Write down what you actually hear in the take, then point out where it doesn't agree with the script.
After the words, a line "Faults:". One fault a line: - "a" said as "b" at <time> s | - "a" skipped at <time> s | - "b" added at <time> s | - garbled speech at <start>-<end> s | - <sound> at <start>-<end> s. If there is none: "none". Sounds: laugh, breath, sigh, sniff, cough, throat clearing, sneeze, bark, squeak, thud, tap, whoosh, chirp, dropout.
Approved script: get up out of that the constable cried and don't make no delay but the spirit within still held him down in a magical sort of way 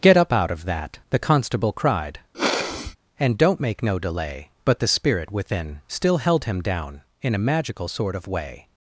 get up out of that the constable cried and don't make no delay but the spirit within still held him down in a magical sort of way
Faults:
- sniff at 2.3-3.0 s